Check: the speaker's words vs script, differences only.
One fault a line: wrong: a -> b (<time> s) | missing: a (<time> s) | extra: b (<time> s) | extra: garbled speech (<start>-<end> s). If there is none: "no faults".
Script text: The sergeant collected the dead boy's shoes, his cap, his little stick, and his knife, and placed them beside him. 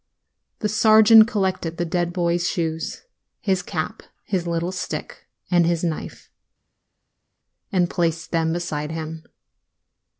no faults